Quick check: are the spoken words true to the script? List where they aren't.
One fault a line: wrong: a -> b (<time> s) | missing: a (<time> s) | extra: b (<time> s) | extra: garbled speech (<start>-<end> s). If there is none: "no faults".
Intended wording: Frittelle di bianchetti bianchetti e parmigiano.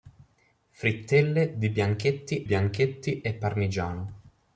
no faults